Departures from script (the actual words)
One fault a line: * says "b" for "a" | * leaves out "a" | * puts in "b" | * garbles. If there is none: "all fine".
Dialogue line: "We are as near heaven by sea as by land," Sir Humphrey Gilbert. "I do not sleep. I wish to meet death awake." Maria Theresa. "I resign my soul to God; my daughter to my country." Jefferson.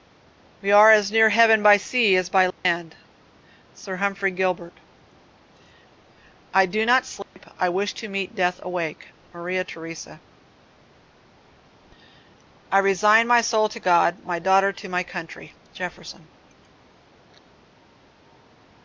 all fine